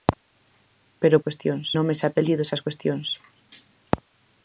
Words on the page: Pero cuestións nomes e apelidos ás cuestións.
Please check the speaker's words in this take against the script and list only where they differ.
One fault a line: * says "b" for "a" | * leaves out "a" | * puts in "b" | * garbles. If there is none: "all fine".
all fine